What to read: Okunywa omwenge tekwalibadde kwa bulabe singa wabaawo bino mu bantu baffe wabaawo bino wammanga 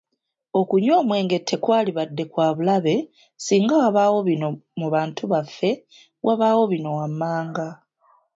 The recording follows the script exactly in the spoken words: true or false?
true